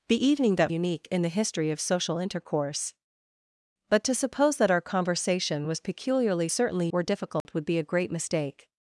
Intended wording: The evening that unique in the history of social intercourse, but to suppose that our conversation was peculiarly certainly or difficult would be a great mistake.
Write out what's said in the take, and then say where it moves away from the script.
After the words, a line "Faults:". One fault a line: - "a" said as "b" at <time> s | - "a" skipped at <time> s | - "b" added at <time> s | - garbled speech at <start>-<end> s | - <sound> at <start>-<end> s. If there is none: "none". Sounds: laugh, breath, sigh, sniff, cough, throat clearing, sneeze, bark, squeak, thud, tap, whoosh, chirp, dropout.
The evening that unique in the history of social intercourse, but to suppose that our conversation was peculiarly certainly or difficult would be a great mistake.
Faults:
- dropout at 7.4-7.5 s